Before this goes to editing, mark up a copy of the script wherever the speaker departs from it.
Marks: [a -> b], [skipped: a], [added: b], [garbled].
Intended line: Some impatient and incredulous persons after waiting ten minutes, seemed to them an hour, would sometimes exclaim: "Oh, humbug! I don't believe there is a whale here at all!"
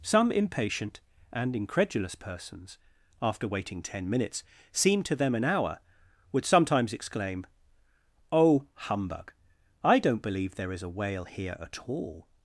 Some impatient and incredulous persons after waiting ten minutes, seemed to them an hour, would sometimes exclaim: "Oh, humbug! I don't believe there is a whale here at all!"